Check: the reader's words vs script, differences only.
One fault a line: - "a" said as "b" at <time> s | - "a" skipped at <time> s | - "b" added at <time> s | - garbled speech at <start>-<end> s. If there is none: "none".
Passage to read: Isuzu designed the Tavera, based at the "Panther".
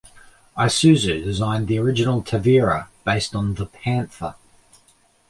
- "original" added at 1.8 s
- "at" said as "on" at 3.3 s